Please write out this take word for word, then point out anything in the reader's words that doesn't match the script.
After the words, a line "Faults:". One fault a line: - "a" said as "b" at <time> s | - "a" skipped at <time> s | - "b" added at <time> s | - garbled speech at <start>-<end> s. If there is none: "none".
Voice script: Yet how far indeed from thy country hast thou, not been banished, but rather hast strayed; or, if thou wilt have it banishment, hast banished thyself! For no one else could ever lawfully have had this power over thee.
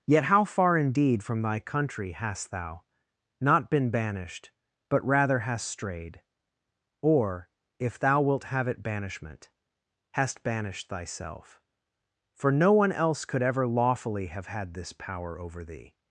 Yet how far indeed from thy country hast thou, not been banished, but rather hast strayed; or, if thou wilt have it banishment, hast banished thyself! For no one else could ever lawfully have had this power over thee.
Faults:
none